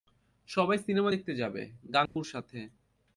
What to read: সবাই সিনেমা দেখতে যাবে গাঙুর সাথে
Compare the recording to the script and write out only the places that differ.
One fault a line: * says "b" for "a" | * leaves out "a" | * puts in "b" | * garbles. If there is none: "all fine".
all fine